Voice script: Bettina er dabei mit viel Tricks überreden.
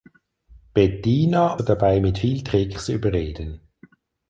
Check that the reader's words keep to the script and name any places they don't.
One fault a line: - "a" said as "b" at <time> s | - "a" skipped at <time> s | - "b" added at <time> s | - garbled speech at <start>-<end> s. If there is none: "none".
none